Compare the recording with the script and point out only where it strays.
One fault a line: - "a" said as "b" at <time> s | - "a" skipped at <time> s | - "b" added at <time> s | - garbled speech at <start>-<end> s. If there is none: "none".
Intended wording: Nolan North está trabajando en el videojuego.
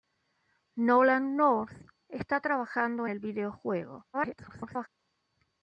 - "en" skipped at 3.0 s
- garbled speech at 4.1-4.9 s